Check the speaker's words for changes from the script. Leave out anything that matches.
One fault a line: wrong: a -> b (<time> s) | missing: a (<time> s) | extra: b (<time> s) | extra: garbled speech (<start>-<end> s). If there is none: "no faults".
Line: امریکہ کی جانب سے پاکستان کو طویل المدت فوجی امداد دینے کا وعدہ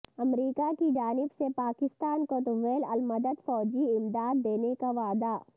no faults